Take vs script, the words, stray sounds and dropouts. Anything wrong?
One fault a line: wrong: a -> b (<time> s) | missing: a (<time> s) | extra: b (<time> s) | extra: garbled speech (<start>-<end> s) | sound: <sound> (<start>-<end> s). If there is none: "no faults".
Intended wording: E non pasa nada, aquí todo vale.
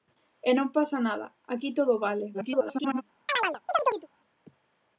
extra: garbled speech (2.3-3.0 s)
sound: chirp (3.3-4.1 s)